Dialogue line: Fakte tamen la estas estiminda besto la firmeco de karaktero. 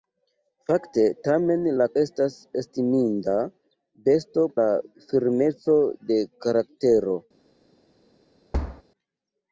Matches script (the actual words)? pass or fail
pass